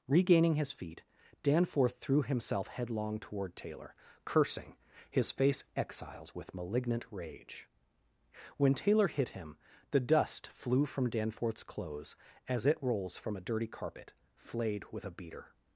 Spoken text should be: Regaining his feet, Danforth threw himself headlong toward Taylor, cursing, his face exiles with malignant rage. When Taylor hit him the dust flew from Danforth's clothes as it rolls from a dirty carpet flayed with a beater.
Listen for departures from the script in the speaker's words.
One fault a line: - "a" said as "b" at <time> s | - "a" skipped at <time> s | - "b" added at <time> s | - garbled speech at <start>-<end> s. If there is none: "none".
none